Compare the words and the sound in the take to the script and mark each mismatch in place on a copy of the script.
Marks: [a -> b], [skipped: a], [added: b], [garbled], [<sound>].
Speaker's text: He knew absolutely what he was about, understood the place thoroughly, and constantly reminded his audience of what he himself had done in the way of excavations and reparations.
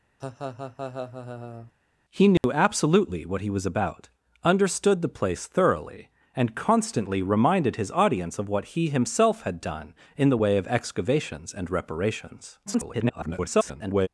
[laugh] He knew [dropout] absolutely what he was about, understood the place thoroughly, and constantly reminded his audience of what he himself had done in the way of excavations and reparations. [garbled]